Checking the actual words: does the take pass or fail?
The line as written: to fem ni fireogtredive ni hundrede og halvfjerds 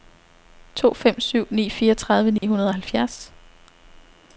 fail